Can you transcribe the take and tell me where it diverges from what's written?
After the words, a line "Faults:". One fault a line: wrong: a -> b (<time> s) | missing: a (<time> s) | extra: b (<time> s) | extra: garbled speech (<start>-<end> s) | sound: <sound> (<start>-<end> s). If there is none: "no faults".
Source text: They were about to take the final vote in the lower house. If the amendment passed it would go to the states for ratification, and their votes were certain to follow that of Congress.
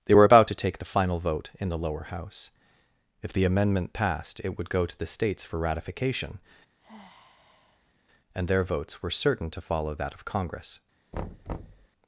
They were about to take the final vote in the lower house. If the amendment passed it would go to the states for ratification, and their votes were certain to follow that of Congress.
Faults:
sound: sigh (6.8-7.9 s)
sound: thud (11.1-11.9 s)